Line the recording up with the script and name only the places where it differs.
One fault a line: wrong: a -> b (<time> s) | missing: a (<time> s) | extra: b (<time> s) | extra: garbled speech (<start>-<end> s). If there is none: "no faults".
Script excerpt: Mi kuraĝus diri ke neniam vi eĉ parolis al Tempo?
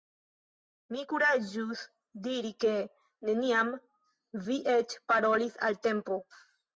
no faults